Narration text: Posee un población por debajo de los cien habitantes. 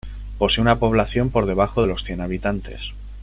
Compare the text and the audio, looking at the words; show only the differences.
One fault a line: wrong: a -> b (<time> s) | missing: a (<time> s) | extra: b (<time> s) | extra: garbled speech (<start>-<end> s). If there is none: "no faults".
wrong: un -> una (0.6 s)